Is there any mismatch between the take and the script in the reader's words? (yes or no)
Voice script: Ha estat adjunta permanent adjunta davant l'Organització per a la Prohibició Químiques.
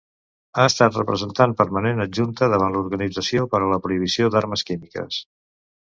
yes